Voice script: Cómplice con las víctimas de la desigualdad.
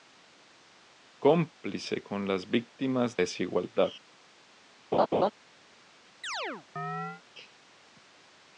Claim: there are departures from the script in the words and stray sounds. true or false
true